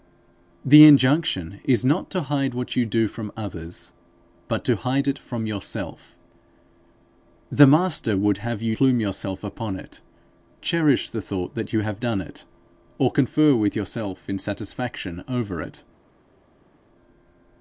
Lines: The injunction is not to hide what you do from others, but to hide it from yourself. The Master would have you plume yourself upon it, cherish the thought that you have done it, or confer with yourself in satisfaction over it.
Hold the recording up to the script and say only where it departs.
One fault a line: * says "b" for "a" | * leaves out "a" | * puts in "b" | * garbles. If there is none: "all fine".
all fine